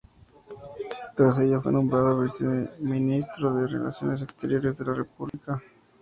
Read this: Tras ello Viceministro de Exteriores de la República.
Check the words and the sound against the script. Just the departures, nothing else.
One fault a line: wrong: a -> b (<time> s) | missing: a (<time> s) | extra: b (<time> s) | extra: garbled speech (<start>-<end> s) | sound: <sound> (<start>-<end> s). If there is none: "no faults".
extra: fue nombrado (1.6 s)
extra: Relaciones (3.7 s)
sound: dropout (5.3-5.3 s)